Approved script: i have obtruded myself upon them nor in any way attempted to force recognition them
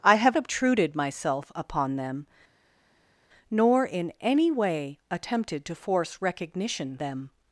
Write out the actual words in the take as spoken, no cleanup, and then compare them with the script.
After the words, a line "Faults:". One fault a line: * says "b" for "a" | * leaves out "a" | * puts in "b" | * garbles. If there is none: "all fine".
i have obtruded myself upon them nor in any way attempted to force recognition them
Faults:
all fine